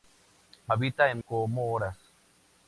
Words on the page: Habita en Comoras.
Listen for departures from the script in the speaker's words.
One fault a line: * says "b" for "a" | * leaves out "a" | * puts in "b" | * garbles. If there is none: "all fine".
all fine